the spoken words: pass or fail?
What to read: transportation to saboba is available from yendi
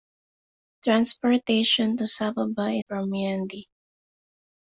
fail